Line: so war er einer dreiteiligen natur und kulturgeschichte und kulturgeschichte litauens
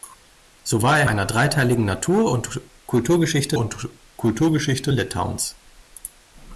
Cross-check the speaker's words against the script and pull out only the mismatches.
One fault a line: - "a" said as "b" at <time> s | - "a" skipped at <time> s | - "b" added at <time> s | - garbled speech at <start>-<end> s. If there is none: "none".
none